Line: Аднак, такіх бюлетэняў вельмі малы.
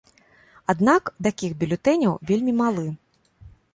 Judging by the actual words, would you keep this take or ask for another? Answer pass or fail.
pass